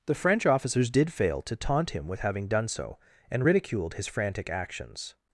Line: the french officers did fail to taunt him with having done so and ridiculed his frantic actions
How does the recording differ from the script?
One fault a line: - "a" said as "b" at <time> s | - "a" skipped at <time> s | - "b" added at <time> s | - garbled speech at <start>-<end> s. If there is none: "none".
none